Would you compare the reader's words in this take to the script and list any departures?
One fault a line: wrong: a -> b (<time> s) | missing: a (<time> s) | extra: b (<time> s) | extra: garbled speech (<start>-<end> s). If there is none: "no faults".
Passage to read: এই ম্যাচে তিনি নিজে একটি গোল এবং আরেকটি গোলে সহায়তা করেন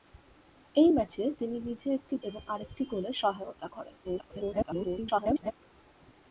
missing: গোল (2.1 s)
extra: garbled speech (4.0-5.5 s)